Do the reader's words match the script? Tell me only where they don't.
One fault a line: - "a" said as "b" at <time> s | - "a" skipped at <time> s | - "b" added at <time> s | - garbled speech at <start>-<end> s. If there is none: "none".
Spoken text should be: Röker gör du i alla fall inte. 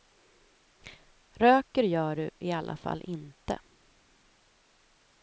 none